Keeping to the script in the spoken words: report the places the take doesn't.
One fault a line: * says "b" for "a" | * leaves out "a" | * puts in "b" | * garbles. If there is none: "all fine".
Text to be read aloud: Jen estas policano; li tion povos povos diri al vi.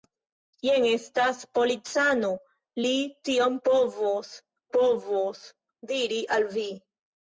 all fine